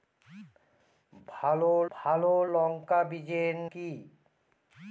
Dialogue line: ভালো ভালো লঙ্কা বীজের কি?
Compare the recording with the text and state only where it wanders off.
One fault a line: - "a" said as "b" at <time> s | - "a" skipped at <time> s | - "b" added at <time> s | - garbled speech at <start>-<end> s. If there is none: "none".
none